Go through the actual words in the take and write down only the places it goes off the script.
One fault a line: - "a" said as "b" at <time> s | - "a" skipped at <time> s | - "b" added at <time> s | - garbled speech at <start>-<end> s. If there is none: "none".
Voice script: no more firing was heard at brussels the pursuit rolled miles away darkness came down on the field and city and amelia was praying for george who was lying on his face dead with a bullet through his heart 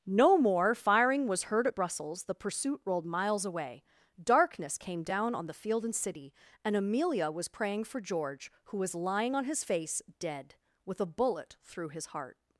none